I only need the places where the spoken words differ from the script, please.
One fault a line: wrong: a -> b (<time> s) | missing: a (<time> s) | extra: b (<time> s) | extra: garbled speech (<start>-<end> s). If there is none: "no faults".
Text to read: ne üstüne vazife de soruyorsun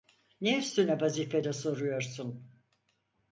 no faults